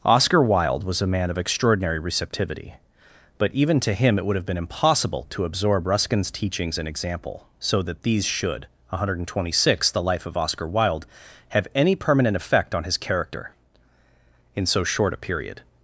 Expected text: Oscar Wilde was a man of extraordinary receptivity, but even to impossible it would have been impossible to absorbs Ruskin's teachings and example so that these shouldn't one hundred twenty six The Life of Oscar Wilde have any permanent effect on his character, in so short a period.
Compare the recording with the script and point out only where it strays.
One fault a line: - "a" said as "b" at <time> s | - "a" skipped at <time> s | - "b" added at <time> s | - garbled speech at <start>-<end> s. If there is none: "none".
- "impossible" said as "him" at 3.9 s
- "absorbs" said as "absorb" at 5.5 s
- "shouldn't" said as "should" at 8.2 s